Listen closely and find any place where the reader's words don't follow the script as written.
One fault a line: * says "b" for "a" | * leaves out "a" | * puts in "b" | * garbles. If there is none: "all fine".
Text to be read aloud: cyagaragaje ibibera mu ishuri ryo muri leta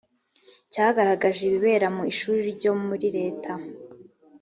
all fine